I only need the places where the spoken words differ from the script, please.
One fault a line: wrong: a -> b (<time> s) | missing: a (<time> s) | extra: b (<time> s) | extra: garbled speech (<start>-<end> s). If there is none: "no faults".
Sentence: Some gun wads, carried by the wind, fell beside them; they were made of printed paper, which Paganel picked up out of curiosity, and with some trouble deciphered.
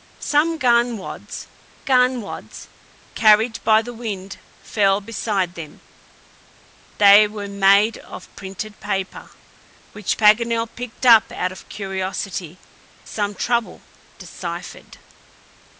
extra: gun wads (1.8 s)
missing: and with (12.6 s)